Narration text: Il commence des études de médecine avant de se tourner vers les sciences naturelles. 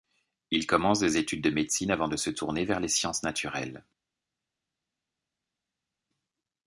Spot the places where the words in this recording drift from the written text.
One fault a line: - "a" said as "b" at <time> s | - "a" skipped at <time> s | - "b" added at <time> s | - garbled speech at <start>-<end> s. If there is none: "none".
none